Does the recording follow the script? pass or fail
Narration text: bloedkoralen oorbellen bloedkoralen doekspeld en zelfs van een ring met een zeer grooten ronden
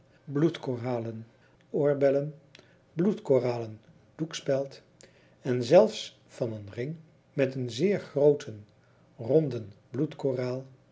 pass